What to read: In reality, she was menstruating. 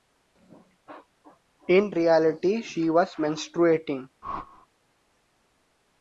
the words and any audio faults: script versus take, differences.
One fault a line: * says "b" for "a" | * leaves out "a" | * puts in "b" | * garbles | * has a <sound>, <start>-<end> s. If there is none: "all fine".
* has a whoosh, 4.2-4.7 s